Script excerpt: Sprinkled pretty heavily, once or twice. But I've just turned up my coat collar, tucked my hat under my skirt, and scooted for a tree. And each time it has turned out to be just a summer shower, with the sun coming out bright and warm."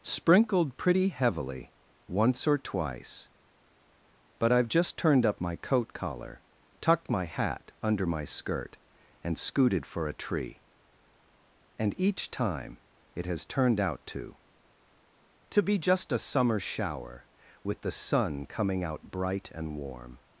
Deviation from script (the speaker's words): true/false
true